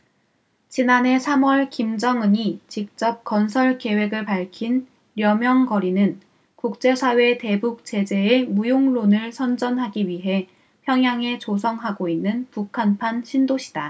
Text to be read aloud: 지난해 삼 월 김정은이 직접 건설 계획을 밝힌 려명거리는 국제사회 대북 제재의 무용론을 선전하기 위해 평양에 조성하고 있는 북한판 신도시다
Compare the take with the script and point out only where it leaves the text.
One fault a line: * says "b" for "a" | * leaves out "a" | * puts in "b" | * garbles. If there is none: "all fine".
all fine